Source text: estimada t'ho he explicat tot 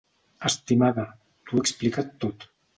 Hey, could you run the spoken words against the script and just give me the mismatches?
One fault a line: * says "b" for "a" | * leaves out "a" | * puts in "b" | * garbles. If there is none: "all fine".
all fine